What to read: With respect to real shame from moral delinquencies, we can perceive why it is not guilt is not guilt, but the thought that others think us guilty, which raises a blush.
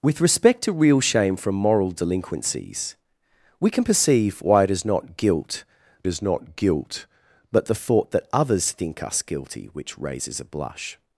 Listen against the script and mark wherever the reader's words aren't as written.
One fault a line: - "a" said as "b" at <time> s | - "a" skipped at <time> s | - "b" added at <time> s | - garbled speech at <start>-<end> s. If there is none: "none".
none